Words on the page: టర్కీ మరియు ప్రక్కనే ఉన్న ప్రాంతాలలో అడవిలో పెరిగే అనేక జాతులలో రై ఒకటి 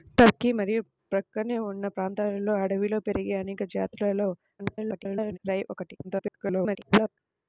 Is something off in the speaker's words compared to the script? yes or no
yes